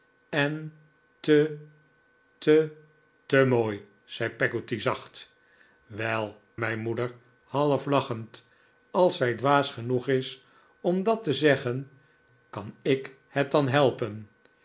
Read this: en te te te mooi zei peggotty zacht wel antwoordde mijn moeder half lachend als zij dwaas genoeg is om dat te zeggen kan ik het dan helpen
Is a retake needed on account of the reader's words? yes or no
yes